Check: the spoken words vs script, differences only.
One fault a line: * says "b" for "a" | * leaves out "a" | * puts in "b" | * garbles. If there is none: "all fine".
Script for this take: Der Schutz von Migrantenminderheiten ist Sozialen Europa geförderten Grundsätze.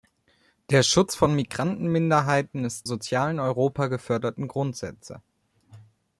all fine